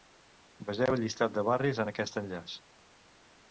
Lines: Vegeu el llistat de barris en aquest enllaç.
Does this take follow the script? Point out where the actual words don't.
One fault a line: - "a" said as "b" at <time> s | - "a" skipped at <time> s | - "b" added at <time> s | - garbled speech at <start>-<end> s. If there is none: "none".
none